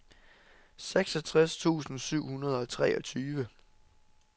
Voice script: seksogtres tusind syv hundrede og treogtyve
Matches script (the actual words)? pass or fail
pass